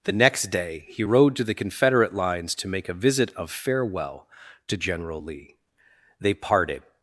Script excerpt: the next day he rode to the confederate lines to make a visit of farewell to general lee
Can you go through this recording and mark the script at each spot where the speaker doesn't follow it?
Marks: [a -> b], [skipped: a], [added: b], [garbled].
the next day he rode to the confederate lines to make a visit of farewell to general lee [added: they parted]